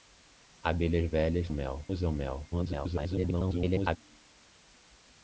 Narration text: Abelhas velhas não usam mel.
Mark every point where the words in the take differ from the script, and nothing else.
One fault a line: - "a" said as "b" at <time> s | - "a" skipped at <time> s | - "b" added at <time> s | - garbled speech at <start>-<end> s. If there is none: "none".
- "não" said as "mel" at 1.5 s
- garbled speech at 2.5-4.0 s